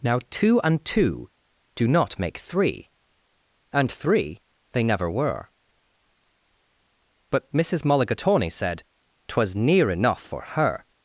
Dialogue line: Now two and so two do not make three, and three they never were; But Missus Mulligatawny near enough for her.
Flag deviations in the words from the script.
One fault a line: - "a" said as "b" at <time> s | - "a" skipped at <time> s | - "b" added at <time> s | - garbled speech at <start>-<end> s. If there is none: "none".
- "so" skipped at 0.8 s
- "said twas" added at 8.5 s